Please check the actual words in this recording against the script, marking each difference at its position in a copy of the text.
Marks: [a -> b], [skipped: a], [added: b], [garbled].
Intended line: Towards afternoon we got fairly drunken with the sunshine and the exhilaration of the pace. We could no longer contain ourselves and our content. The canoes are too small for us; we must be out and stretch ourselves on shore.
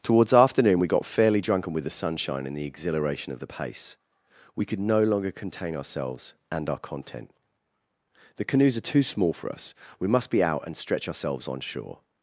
Towards afternoon we got fairly drunken with the sunshine and the exhilaration of the pace. We could no longer contain ourselves and our content. The canoes are too small for us; we must be out and stretch ourselves on shore.